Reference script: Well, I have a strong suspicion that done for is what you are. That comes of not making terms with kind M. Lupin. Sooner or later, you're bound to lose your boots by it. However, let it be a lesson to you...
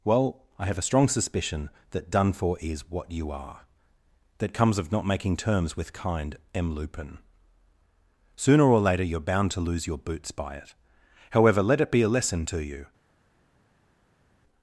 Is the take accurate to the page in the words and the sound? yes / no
yes